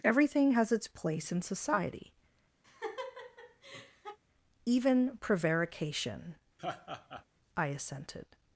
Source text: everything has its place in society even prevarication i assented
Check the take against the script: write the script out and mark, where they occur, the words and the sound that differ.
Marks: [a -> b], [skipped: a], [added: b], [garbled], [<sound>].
everything has its place in society [laugh] even prevarication [laugh] i assented